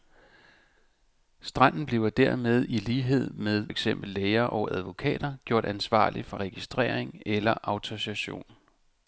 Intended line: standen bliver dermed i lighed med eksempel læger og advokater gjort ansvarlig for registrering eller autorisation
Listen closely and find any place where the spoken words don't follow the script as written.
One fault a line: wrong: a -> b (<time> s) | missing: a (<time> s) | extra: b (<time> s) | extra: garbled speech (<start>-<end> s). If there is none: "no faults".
no faults